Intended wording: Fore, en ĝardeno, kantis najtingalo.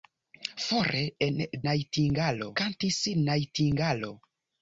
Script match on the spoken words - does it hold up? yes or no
no